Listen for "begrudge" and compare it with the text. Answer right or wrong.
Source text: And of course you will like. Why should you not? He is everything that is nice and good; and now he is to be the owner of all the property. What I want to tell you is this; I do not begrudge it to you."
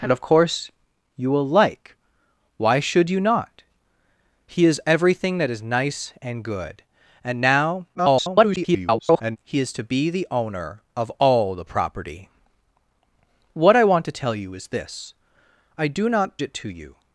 wrong